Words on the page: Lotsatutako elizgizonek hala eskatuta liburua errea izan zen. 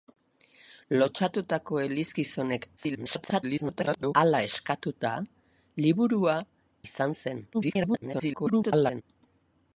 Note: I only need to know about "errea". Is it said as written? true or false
false